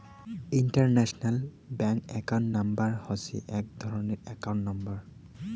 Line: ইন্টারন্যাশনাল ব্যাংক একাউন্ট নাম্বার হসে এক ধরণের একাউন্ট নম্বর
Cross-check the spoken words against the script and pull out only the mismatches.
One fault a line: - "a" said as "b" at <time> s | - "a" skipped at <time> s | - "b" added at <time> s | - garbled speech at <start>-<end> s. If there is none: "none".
none